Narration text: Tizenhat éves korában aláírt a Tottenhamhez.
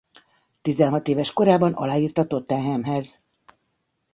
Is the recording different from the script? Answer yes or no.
no